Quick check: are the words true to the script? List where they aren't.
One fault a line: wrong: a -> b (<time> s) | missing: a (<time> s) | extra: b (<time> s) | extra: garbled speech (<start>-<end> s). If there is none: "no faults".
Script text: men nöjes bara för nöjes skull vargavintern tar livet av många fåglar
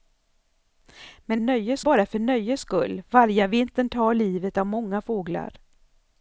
no faults